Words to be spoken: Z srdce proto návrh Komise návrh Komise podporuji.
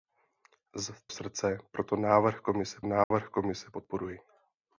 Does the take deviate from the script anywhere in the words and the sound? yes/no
yes